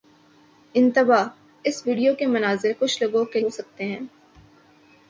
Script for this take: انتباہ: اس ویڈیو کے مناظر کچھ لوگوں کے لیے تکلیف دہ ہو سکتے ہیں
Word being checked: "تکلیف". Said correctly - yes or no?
no